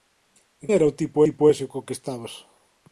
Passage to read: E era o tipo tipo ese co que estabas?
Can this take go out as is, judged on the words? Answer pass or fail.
pass